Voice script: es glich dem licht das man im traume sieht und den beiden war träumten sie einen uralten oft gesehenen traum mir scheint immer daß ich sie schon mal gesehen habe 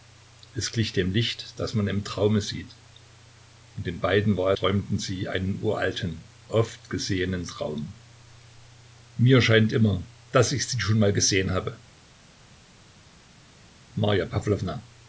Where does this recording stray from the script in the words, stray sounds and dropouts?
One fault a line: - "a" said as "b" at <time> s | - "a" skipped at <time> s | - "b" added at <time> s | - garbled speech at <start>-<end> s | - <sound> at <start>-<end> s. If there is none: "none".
none